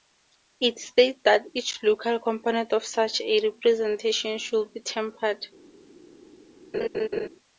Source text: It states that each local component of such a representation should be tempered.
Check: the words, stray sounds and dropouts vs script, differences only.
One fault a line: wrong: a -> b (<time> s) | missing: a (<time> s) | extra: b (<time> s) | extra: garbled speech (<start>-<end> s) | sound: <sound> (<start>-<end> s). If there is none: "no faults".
sound: laugh (6.7-7.3 s)